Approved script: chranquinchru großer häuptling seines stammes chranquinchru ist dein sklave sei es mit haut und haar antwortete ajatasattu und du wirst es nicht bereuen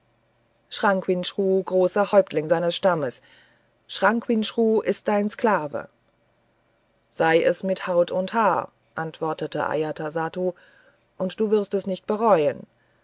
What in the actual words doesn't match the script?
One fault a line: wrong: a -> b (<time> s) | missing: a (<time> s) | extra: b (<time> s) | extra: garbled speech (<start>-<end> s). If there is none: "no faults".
no faults